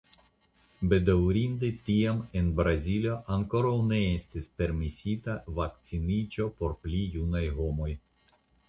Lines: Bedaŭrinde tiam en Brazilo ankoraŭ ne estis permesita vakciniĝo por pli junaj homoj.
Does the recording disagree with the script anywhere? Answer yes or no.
no